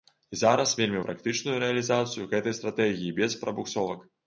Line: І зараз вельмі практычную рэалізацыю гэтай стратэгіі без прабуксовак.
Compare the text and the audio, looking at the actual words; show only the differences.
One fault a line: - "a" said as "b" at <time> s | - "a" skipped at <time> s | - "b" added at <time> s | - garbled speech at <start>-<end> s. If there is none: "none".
none